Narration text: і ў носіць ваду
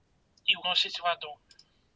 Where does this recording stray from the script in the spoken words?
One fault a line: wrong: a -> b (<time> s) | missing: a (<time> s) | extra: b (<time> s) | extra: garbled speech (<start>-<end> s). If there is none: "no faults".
no faults